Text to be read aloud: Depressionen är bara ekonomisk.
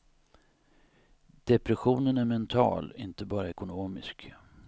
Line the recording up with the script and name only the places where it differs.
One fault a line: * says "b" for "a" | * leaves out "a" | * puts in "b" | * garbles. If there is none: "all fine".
* puts in "mental inte"